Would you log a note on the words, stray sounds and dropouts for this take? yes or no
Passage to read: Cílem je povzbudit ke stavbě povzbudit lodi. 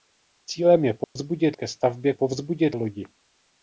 yes